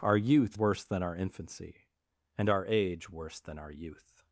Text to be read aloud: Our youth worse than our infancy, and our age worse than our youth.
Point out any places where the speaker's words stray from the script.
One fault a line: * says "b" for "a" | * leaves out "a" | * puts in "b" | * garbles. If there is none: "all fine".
all fine